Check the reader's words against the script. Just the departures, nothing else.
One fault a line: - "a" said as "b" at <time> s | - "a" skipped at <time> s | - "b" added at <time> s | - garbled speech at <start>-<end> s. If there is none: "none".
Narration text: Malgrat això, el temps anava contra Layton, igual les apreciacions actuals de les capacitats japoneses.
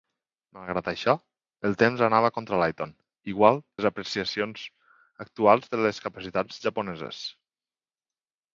none